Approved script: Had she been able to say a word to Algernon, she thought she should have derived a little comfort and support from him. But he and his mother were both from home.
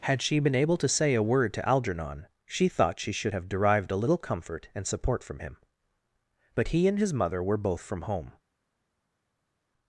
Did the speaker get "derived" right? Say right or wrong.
right